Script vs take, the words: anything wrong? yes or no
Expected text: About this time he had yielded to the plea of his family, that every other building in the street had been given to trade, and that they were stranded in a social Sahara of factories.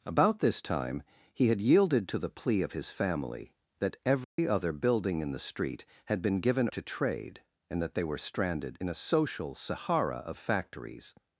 no